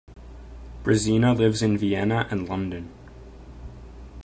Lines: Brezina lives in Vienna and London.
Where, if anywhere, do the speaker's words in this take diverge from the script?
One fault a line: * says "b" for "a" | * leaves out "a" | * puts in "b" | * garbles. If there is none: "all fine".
all fine